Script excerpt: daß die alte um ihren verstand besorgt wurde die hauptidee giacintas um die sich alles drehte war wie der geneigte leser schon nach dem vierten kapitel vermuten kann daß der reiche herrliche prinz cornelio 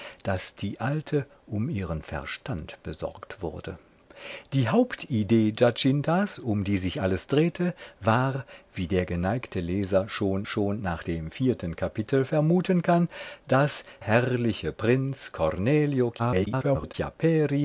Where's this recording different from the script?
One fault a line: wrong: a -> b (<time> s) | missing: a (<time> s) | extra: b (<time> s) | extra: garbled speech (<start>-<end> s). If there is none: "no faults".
extra: schon (10.5 s)
missing: der reiche (13.8 s)
extra: garbled speech (16.2-16.9 s)